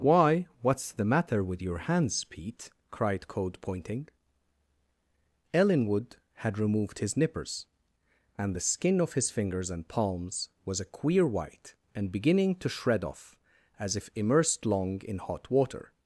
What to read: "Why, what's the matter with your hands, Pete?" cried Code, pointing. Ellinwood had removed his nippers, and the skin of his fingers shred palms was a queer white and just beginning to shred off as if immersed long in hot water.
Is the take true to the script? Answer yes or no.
no